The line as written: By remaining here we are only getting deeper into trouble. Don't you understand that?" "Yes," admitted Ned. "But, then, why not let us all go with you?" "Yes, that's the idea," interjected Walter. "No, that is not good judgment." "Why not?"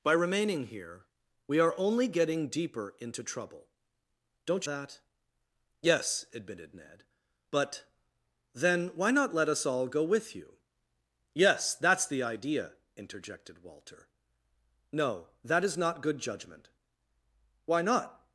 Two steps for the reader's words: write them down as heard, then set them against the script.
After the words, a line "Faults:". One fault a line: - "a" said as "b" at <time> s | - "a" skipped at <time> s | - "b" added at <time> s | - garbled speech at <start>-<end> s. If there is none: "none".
By remaining here we are only getting deeper into trouble. Don't that?" "Yes," admitted Ned. "But, then, why not let us all go with you?" "Yes, that's the idea," interjected Walter. "No, that is not good judgment." "Why not?"
Faults:
- "you understand" skipped at 4.7 s